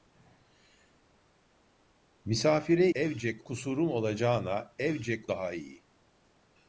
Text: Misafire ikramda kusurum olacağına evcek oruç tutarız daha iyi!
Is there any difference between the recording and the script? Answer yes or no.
yes